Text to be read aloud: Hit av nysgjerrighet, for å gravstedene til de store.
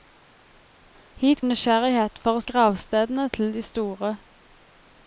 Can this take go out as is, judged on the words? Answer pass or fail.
pass